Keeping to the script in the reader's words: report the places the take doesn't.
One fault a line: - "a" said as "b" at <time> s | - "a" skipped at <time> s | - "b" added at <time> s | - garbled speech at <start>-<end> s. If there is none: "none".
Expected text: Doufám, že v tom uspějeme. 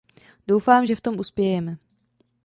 none